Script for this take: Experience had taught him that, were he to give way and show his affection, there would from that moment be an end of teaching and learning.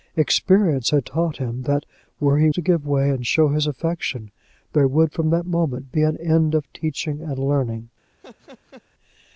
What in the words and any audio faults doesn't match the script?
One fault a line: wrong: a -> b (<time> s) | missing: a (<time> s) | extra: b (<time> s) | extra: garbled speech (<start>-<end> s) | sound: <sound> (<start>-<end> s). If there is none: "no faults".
sound: laugh (8.2-8.8 s)